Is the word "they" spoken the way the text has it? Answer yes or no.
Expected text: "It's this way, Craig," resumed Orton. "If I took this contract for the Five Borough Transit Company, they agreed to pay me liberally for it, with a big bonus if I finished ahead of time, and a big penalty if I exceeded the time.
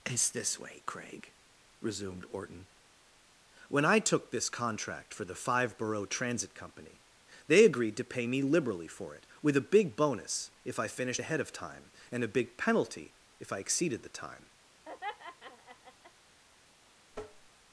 yes